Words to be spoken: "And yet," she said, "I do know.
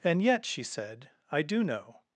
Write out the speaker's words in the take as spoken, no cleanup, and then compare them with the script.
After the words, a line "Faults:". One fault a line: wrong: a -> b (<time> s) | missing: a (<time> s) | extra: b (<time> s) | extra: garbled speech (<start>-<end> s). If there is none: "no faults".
"And yet," she said, "I do know.
Faults:
no faults